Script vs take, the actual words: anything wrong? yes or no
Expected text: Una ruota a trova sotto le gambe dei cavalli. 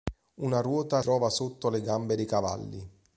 no